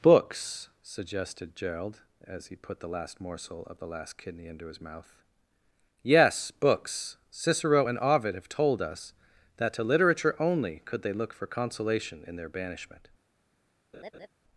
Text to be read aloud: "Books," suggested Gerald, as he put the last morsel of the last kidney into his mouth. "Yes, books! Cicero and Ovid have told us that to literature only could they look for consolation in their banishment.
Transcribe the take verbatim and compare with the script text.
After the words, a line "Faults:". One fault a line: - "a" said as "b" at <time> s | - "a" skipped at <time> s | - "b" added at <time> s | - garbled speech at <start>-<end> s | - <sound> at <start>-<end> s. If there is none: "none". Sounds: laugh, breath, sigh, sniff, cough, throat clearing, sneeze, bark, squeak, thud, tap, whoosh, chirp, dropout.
"Books," suggested Gerald, as he put the last morsel of the last kidney into his mouth. "Yes, books! Cicero and Ovid have told us that to literature only could they look for consolation in their banishment.
Faults:
- laugh at 13.9-14.3 s